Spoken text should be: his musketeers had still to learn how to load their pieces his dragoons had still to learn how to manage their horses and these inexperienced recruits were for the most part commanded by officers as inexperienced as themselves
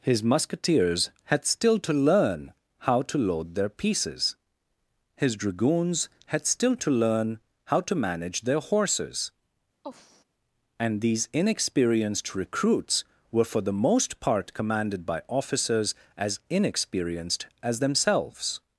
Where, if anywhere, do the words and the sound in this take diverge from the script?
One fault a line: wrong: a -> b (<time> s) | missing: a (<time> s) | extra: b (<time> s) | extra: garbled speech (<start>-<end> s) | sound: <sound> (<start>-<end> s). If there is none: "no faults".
sound: sigh (9.8-10.2 s)